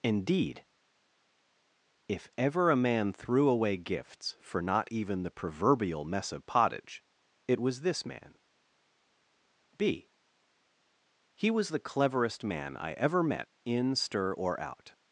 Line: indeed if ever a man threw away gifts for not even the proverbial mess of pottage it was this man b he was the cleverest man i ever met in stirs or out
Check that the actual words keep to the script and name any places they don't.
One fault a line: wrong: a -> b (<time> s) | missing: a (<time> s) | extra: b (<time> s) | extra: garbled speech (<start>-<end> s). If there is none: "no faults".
wrong: stirs -> stir (13.9 s)